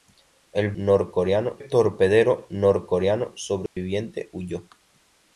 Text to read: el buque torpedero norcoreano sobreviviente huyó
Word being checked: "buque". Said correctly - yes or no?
no